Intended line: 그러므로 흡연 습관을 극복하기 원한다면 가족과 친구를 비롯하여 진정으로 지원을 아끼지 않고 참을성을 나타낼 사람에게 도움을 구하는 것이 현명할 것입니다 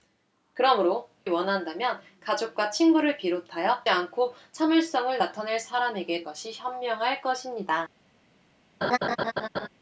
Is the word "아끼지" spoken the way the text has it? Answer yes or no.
no